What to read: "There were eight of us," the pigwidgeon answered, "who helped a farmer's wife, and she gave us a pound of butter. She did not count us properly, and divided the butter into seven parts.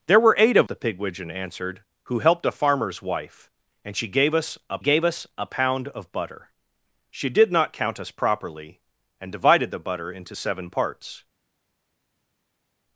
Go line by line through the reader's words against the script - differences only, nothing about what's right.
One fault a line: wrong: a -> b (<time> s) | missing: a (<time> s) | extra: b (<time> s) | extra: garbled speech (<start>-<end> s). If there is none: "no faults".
missing: us (0.7 s)
extra: gave us a (4.8 s)